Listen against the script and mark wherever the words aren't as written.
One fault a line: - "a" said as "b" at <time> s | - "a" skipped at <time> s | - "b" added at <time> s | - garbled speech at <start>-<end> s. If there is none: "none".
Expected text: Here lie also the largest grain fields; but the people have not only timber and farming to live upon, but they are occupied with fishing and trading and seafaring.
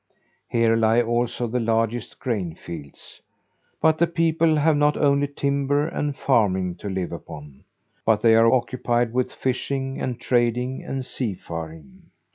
none